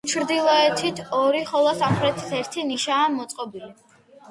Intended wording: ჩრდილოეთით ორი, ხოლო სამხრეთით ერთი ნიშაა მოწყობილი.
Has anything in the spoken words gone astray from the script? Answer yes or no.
no